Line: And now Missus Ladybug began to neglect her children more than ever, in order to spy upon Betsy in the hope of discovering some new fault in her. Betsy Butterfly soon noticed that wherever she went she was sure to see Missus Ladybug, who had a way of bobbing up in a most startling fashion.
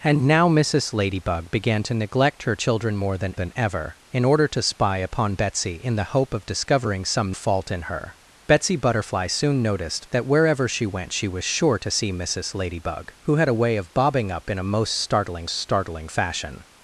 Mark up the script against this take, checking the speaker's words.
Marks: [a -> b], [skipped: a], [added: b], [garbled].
And now Missus Ladybug began to neglect her children more than [added: than] ever, in order to spy upon Betsy in the hope of discovering some [skipped: new] fault in her. Betsy Butterfly soon noticed that wherever she went she was sure to see Missus Ladybug, who had a way of bobbing up in a most startling [added: startling] fashion.